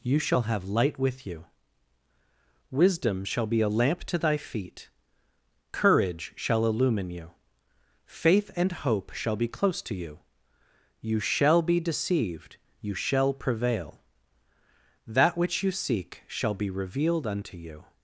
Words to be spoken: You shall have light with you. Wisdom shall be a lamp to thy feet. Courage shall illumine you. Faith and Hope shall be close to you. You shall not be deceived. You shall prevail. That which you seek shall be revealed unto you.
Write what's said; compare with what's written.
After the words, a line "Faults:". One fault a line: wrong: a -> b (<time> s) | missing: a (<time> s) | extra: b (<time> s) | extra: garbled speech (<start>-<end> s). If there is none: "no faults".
You shall have light with you. Wisdom shall be a lamp to thy feet. Courage shall illumine you. Faith and Hope shall be close to you. You shall be deceived. You shall prevail. That which you seek shall be revealed unto you.
Faults:
missing: not (11.6 s)